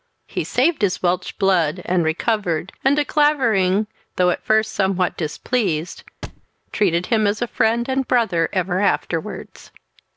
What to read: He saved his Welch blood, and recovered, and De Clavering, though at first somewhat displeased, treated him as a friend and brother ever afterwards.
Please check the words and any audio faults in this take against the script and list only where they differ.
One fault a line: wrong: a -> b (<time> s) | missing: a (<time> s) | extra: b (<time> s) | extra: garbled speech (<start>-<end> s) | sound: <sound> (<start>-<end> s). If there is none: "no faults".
sound: thud (6.2-6.5 s)